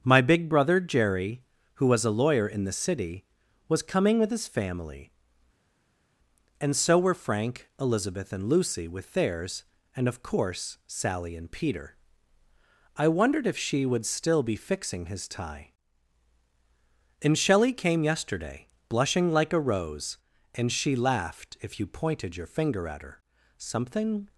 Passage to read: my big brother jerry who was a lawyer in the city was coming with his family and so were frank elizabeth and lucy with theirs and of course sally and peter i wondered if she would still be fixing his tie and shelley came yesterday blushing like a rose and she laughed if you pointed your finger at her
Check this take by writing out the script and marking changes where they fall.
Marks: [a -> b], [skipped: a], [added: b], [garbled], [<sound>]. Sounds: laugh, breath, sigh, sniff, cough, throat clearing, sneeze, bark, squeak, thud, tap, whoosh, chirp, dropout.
my big brother jerry who was a lawyer in the city was coming with his family and so were frank elizabeth and lucy with theirs and of course sally and peter i wondered if she would still be fixing his tie and shelley came yesterday blushing like a rose and she laughed if you pointed your finger at her [added: something]